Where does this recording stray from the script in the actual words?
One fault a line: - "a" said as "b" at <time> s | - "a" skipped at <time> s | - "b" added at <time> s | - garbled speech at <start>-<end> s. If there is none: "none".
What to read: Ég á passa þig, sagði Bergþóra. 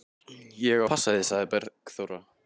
none